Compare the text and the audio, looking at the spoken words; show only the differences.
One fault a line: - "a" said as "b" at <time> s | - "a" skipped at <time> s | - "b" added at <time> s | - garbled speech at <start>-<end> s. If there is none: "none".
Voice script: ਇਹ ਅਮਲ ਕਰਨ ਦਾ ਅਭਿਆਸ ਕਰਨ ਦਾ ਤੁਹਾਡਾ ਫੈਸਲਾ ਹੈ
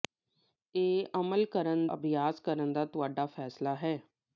- "ਦਾ" skipped at 1.9 s